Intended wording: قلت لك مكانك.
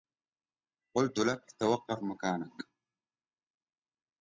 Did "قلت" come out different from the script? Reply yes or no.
no